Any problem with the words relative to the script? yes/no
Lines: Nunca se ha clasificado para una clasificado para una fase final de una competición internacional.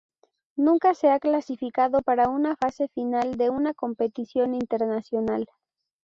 yes